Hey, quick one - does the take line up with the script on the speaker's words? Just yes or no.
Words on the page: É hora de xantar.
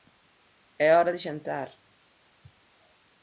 yes